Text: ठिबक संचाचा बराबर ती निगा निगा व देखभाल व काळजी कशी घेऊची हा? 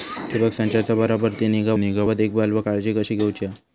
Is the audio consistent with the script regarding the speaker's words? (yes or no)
yes